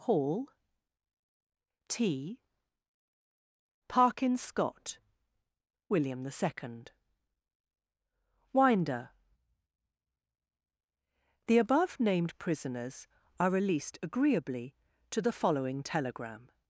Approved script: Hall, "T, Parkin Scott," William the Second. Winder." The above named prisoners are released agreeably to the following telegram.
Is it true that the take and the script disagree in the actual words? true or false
false